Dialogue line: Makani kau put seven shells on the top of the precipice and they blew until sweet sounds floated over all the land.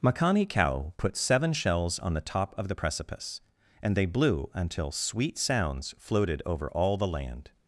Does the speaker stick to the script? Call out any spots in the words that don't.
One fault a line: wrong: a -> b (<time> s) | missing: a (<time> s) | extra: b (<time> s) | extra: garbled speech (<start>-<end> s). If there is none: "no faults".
no faults